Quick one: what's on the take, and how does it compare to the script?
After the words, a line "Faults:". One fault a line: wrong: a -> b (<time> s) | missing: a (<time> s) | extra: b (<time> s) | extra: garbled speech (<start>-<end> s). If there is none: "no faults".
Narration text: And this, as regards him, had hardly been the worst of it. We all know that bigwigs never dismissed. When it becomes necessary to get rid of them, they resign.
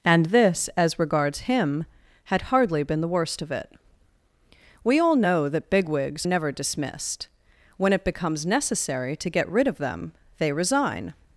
And this, as regards him, had hardly been the worst of it. We all know that bigwigs never dismissed. When it becomes necessary to get rid of them, they resign.
Faults:
no faults